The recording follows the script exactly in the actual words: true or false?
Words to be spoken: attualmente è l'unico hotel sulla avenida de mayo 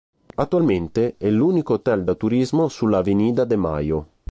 false